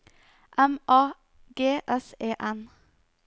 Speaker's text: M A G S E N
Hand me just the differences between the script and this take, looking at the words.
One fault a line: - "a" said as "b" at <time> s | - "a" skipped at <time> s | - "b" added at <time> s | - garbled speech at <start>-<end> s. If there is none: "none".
none